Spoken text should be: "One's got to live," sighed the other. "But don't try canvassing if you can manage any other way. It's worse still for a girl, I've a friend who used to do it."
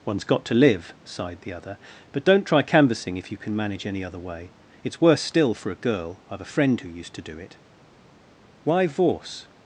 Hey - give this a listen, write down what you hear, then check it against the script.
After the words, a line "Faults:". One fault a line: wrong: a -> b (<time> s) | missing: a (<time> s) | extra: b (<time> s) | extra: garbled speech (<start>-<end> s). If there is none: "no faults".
"One's got to live," sighed the other. "But don't try canvassing if you can manage any other way. It's worse still for a girl, I've a friend who used to do it." "Why Vorse
Faults:
extra: Why Vorse (8.6 s)